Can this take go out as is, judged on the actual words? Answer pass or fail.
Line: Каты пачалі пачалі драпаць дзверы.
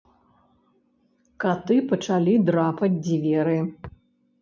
fail